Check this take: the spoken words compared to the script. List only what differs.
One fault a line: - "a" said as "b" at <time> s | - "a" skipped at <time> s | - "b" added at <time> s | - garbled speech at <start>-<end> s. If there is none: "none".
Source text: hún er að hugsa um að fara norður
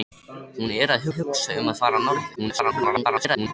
- "að" added at 1.1 s
- garbled speech at 2.4-3.5 s